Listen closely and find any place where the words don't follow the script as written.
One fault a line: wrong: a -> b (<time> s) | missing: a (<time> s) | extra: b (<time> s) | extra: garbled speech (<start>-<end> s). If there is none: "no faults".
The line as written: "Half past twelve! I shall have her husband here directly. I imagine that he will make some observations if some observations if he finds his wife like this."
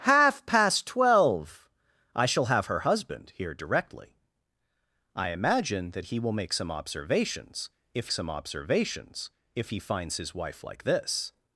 no faults